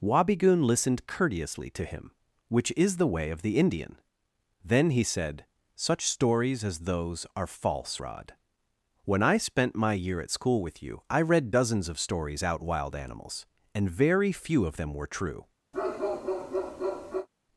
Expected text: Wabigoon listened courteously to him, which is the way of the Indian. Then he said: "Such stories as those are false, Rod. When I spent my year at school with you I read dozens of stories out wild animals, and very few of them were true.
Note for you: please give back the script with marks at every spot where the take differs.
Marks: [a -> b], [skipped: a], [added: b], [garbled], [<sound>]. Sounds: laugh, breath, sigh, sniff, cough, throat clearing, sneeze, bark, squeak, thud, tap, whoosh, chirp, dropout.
Wabigoon listened courteously to him, which is the way of the Indian. Then he said: "Such stories as those are false, Rod. When I spent my year at school with you I read dozens of stories out wild animals, and very few of them were true. [bark]